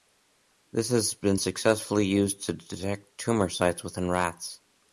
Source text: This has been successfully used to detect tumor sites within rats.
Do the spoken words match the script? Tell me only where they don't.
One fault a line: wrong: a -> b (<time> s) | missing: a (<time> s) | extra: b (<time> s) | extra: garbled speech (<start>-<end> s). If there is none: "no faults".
no faults